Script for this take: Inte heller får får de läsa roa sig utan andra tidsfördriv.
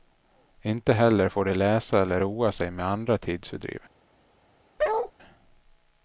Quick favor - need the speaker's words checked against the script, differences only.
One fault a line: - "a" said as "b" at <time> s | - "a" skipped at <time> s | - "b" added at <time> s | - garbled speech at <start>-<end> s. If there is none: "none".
- "får" skipped at 1.4 s
- "eller" added at 2.0 s
- "utan" said as "med" at 2.7 s